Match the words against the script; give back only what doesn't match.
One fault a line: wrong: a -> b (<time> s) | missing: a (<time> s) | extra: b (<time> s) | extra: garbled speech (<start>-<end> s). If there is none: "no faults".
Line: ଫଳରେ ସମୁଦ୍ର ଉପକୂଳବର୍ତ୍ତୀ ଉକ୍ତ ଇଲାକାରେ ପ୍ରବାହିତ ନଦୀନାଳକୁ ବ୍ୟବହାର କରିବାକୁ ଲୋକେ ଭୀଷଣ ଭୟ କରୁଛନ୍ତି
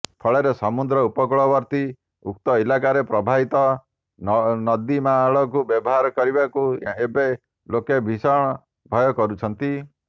extra: ଏବେ (7.0 s)